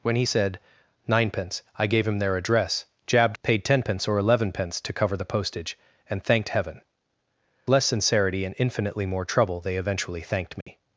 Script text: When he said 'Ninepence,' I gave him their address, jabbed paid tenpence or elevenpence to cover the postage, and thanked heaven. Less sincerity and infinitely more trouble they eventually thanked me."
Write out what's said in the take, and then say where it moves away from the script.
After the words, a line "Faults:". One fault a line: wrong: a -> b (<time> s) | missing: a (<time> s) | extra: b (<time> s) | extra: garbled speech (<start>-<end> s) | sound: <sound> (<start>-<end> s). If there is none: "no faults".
When he said 'Ninepence,' I gave him their address, jabbed paid tenpence or elevenpence to cover the postage, and thanked heaven. Less sincerity and infinitely more trouble they eventually thanked me."
Faults:
sound: dropout (10.6-10.7 s)